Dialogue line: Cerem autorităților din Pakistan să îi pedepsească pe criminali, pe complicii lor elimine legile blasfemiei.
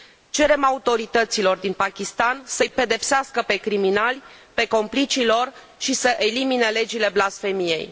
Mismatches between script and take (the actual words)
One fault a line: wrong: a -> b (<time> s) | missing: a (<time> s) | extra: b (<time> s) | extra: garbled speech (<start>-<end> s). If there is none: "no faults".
extra: și să (5.8 s)